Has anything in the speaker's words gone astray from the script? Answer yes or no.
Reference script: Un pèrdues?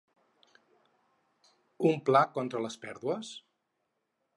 yes